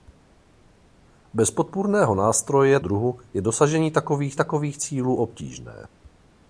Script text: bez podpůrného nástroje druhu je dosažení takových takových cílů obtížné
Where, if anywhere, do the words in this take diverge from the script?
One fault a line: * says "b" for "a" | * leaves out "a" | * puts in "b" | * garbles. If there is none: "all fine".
all fine